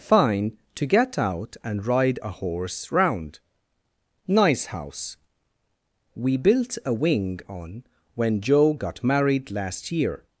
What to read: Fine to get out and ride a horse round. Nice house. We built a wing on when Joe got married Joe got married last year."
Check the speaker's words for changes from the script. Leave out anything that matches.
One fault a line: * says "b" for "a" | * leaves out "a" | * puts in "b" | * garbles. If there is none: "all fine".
* leaves out "Joe got married"